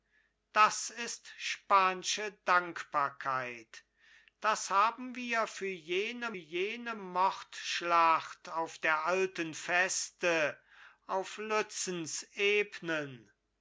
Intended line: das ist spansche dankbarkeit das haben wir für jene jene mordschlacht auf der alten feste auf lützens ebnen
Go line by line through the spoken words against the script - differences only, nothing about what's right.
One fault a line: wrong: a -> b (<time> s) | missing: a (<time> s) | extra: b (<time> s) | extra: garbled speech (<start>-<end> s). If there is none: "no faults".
no faults